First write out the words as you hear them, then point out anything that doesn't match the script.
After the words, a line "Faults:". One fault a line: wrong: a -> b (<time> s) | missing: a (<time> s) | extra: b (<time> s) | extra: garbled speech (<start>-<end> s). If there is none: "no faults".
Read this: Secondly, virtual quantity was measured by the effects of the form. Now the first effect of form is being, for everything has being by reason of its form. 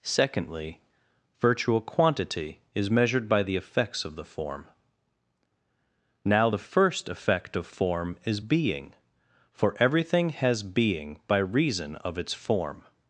Secondly, virtual quantity is measured by the effects of the form. Now the first effect of form is being, for everything has being by reason of its form.
Faults:
wrong: was -> is (2.7 s)